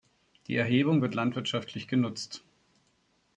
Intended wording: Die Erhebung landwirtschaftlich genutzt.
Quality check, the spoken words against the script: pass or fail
fail